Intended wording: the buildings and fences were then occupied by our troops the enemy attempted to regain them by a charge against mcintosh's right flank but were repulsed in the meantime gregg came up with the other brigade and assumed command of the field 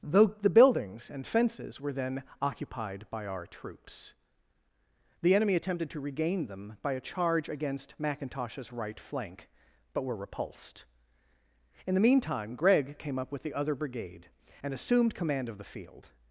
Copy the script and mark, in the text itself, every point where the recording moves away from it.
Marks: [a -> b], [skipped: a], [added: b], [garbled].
[added: though] the buildings and fences were then occupied by our troops the enemy attempted to regain them by a charge against mcintosh's right flank but were repulsed in the meantime gregg came up with the other brigade and assumed command of the field